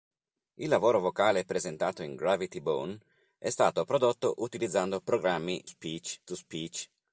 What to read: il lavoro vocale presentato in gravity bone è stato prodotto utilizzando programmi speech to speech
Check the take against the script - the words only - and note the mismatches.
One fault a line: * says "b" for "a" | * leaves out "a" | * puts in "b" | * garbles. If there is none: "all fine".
all fine